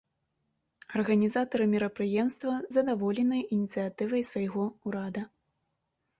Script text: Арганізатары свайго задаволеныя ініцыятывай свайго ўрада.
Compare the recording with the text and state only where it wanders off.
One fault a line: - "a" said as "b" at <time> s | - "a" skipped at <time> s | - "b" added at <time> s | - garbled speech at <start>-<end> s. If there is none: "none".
- "свайго" said as "мерапрыемства" at 1.7 s